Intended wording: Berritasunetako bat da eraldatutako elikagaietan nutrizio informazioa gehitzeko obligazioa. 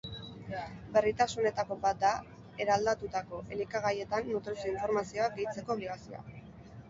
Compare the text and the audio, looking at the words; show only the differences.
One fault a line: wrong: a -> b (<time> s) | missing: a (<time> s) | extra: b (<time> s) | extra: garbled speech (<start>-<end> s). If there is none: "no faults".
no faults